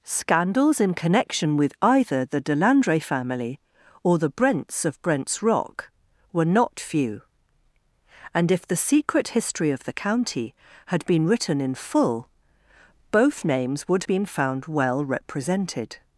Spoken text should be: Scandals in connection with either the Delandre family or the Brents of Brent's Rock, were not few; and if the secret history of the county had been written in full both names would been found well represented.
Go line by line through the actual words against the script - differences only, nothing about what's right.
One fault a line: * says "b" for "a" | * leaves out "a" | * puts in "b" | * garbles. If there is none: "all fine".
all fine